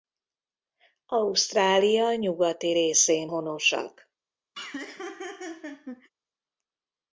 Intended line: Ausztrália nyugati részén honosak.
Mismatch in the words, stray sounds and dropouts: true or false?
true